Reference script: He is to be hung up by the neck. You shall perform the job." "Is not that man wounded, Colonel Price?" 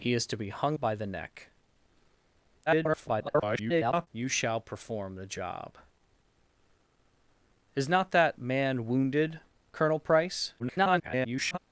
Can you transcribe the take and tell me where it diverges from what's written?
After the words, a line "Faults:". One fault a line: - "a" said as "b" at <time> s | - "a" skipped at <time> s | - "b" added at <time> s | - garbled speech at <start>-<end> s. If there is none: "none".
He is to be hung by the neck. [garbled] You shall perform the job." "Is not that man wounded, Colonel Price?" [garbled]
Faults:
- "up" skipped at 0.8 s
- garbled speech at 2.7-4.1 s
- garbled speech at 10.6-11.6 s